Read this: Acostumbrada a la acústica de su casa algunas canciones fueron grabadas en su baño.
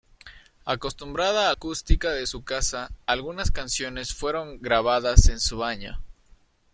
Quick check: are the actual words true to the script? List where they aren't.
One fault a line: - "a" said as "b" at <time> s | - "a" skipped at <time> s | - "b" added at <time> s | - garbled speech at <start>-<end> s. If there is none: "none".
- "la" skipped at 1.5 s